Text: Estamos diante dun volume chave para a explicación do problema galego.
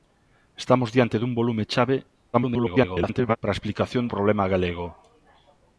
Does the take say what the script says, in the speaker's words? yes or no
no